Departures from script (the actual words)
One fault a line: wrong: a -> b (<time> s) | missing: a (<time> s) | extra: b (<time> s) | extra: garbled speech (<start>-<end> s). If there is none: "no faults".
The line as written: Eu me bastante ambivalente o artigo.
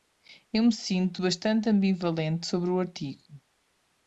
extra: sinto (0.7 s)
extra: sobre (2.4 s)